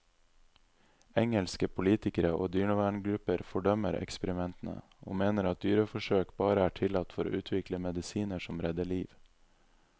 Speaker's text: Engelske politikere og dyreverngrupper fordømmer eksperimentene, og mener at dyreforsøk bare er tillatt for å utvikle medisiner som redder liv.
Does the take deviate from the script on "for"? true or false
false